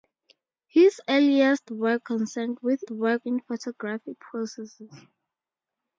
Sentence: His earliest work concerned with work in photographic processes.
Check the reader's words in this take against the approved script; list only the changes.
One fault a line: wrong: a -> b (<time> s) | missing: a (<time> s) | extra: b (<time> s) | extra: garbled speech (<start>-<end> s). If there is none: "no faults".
no faults